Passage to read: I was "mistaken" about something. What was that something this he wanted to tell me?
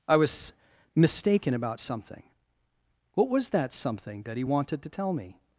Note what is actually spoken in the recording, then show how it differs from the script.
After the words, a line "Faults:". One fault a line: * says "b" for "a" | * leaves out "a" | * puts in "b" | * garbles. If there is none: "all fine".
I was "mistaken" about something. What was that something that he wanted to tell me?
Faults:
* says "that" for "this"